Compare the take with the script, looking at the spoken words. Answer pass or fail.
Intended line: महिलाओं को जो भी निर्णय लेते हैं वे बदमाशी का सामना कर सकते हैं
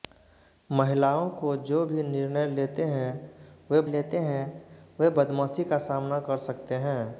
fail